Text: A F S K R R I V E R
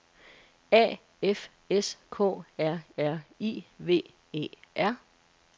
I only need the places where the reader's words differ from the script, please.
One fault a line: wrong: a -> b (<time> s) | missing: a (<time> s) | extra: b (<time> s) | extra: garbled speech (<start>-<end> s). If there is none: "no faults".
no faults